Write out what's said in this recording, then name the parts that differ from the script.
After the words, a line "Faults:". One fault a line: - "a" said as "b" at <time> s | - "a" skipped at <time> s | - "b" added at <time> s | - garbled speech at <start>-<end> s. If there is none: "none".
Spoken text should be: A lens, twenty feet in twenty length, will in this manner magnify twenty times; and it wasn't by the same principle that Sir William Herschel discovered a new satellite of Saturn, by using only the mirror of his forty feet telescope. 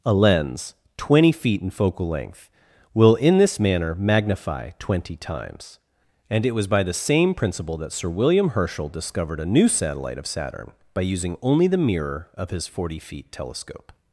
A lens, twenty feet in focal length, will in this manner magnify twenty times; and it was by the same principle that Sir William Herschel discovered a new satellite of Saturn, by using only the mirror of his forty feet telescope.
Faults:
- "twenty" said as "focal" at 1.7 s
- "wasn't" said as "was" at 6.5 s